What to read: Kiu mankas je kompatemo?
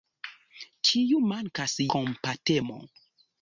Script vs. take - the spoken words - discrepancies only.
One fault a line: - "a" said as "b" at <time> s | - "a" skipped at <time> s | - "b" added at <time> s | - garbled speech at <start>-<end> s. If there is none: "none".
- "je" skipped at 1.8 s